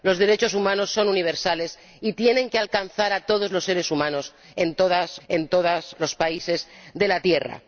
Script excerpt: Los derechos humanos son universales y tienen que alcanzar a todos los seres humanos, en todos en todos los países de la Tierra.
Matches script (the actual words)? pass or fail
pass